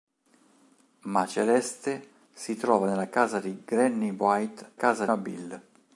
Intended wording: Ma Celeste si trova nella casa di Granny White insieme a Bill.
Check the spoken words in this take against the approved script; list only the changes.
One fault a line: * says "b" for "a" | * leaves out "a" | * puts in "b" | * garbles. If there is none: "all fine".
* says "casa" for "insieme"